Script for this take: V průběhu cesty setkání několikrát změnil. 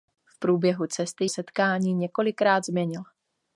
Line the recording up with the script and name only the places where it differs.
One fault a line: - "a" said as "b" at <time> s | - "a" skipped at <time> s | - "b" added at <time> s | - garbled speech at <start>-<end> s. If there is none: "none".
none